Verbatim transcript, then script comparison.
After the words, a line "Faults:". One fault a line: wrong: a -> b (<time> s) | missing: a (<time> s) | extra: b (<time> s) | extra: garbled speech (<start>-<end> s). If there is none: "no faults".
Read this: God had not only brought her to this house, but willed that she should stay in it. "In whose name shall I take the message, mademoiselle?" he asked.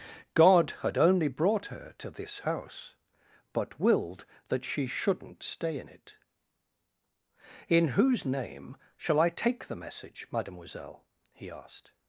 God had only brought her to this house, but willed that she shouldn't stay in it. "In whose name shall I take the message, mademoiselle?" he asked.
Faults:
missing: not (1.0 s)
wrong: should -> shouldn't (4.9 s)